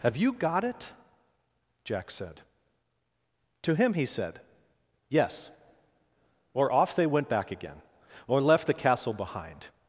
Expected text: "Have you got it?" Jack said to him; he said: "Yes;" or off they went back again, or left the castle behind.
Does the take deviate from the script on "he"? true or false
false